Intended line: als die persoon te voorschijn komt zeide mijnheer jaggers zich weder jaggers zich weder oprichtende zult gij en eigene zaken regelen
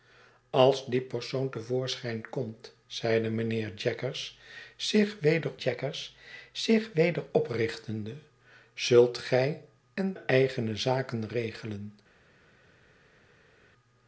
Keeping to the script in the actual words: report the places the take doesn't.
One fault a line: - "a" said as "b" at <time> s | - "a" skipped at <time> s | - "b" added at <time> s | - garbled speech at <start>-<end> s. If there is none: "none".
none